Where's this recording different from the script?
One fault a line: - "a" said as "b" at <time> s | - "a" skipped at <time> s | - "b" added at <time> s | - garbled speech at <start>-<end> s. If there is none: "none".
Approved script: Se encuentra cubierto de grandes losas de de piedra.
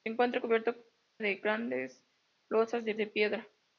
none